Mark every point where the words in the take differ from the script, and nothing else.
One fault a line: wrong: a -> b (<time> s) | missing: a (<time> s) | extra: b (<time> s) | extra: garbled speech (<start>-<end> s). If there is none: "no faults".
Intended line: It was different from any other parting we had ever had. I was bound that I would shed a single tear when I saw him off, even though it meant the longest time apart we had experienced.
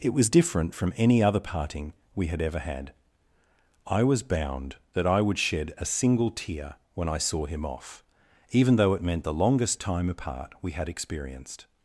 no faults